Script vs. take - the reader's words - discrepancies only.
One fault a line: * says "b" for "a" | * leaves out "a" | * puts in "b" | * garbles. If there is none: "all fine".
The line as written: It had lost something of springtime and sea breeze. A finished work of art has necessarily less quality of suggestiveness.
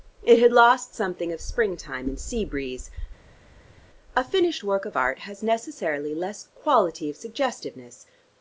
all fine